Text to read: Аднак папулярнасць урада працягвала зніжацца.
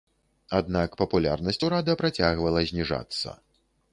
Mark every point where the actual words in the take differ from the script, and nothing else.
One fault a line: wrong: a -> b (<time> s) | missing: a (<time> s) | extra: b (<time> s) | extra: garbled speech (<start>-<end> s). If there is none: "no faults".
no faults